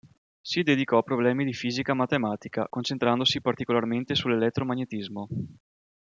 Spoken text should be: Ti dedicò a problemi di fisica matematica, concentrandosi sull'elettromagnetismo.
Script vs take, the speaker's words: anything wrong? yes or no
yes